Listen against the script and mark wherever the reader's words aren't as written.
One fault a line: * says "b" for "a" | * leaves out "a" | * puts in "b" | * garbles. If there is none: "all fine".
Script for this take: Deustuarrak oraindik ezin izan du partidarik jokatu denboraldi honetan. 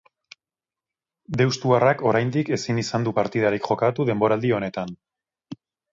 all fine